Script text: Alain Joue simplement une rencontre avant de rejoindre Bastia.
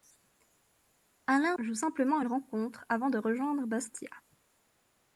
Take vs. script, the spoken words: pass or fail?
pass